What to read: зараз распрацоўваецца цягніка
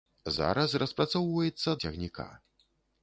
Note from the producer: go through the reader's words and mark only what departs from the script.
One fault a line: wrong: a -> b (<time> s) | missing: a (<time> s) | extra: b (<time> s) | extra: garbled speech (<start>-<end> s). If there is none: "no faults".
no faults